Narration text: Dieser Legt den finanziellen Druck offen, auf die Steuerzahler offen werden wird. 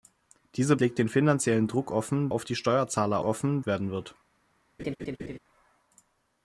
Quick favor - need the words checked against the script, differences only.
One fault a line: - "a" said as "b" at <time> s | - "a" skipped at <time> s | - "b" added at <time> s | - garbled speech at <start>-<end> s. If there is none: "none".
none